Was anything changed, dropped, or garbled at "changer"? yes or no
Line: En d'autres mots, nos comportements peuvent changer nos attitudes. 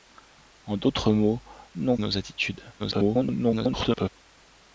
yes